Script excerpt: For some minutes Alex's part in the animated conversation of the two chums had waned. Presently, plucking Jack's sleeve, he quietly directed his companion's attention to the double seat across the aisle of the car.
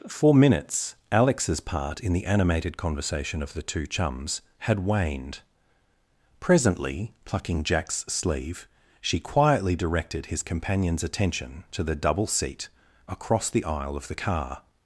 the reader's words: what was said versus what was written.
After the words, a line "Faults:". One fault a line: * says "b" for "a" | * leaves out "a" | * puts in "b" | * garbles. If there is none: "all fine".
For minutes Alex's part in the animated conversation of the two chums had waned. Presently, plucking Jack's sleeve, she quietly directed his companion's attention to the double seat across the aisle of the car.
Faults:
* leaves out "some"
* says "she" for "he"